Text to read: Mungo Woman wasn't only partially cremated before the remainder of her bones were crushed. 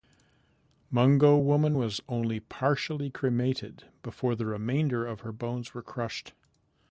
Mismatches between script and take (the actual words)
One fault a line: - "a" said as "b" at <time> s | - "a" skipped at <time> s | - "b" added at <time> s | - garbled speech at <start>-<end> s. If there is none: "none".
- "wasn't" said as "was" at 1.8 s